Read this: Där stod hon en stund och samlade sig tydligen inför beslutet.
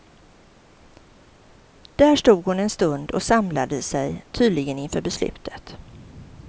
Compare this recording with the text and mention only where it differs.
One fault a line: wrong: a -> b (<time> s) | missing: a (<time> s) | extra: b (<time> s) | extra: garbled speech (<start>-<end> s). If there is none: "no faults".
no faults